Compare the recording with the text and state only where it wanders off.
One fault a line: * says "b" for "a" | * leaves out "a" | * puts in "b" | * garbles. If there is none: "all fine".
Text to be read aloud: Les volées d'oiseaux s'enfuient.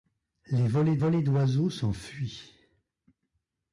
* puts in "volées"